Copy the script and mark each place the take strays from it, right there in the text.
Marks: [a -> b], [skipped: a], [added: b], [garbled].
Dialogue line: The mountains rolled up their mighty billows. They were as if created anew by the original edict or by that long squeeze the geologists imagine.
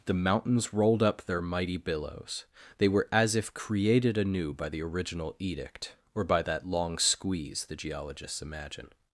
The mountains rolled up their mighty billows. They were as if created anew by the original edict or by that long squeeze the geologists imagine.